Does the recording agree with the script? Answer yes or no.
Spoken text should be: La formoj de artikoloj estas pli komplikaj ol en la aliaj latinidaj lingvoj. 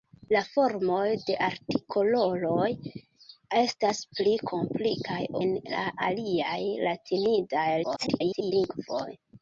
no